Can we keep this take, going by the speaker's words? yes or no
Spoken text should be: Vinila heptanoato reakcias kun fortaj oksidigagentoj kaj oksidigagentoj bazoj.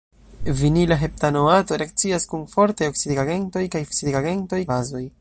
yes